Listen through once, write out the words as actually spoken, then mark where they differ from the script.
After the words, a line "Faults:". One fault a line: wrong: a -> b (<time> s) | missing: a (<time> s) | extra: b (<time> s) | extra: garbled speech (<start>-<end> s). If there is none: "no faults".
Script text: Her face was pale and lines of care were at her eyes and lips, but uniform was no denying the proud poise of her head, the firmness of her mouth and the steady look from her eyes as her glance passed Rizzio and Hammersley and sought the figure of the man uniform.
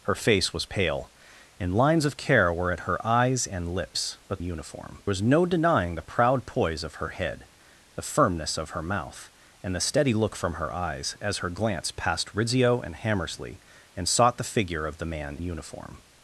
Her face was pale and lines of care were at her eyes and lips, but uniform was no denying the proud poise of her head, the firmness of her mouth and the steady look from her eyes as her glance passed Rizzio and Hammersley and sought the figure of the man uniform.
Faults:
no faults